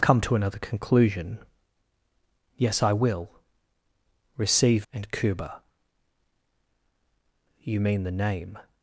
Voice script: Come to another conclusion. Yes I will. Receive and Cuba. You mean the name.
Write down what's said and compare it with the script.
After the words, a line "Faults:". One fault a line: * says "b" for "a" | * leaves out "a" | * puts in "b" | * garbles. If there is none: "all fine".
Come to another conclusion. Yes I will. Receive and Cuba. You mean the name.
Faults:
all fine